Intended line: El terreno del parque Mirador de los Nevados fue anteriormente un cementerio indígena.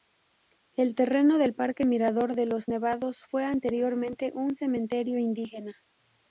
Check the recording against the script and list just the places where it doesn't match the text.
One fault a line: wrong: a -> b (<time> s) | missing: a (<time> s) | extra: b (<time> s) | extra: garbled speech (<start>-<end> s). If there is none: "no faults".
no faults